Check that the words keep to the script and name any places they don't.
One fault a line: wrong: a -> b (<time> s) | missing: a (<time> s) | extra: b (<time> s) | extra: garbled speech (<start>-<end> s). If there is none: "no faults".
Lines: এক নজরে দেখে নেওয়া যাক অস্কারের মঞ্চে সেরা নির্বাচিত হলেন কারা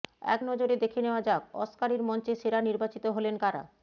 no faults